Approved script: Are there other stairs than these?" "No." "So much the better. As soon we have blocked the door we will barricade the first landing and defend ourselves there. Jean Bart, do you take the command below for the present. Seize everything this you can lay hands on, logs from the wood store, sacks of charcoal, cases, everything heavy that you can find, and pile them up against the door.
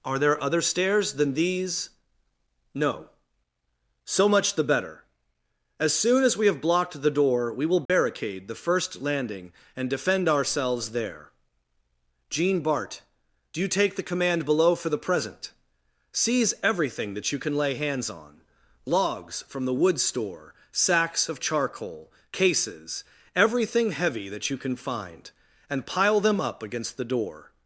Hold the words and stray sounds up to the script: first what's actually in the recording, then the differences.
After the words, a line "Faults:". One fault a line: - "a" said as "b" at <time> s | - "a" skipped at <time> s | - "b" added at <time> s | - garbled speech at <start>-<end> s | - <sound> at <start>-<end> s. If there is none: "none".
Are there other stairs than these?" "No." "So much the better. As soon as we have blocked the door we will barricade the first landing and defend ourselves there. Jean Bart, do you take the command below for the present. Seize everything that you can lay hands on, logs from the wood store, sacks of charcoal, cases, everything heavy that you can find, and pile them up against the door.
Faults:
- "as" added at 6.2 s
- dropout at 7.9-7.9 s
- "this" said as "that" at 17.1 s